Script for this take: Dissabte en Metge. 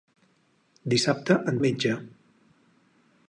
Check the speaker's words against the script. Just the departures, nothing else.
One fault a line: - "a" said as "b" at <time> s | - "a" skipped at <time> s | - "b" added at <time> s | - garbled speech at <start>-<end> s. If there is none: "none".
none